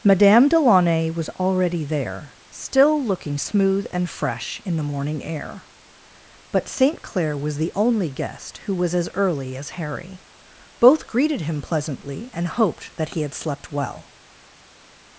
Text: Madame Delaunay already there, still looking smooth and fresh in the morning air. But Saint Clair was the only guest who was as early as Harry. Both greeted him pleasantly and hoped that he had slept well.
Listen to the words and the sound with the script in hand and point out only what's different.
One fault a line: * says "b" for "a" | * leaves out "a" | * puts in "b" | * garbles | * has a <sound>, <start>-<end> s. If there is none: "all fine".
* puts in "was"